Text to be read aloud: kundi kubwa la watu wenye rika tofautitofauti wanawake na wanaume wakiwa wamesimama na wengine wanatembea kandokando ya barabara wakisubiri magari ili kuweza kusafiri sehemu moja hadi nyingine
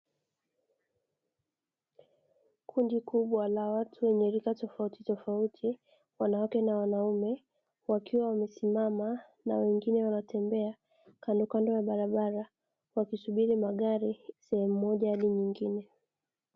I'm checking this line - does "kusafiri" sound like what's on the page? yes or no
no